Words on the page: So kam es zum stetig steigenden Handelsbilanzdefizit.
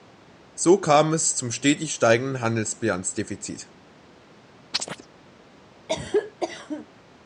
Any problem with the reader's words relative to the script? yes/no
no